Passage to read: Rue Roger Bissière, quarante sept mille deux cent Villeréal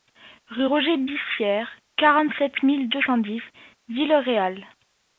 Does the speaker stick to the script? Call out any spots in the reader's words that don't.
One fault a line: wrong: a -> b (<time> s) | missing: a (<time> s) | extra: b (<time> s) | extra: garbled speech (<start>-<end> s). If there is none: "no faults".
extra: dix (3.2 s)